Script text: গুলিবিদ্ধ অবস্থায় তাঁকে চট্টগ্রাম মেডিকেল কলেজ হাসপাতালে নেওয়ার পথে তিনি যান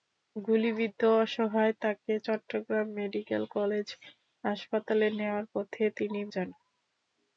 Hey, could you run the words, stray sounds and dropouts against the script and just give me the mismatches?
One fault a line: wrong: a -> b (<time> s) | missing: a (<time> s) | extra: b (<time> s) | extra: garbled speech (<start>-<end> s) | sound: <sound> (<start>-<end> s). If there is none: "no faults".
no faults